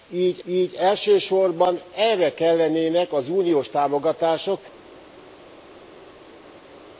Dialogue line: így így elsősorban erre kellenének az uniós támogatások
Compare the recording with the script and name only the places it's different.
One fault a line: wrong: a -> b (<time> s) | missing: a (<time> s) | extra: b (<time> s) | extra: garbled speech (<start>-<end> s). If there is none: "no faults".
no faults